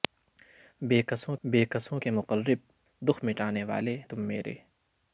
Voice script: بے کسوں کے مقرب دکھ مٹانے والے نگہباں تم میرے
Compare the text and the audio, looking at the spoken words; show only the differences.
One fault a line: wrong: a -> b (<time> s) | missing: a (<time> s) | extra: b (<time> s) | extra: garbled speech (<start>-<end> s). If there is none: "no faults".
extra: بے کسوں (1.4 s)
missing: نگہباں (4.0 s)